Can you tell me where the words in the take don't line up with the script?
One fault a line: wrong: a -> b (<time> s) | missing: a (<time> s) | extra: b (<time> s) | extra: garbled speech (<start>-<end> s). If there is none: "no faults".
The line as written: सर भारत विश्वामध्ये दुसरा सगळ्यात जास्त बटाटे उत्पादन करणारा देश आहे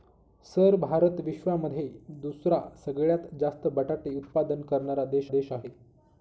extra: देश (5.3 s)